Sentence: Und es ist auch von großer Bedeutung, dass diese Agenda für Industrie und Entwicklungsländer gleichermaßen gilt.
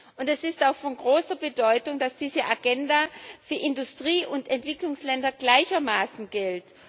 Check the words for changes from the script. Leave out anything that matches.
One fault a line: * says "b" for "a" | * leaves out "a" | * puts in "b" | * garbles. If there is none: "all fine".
all fine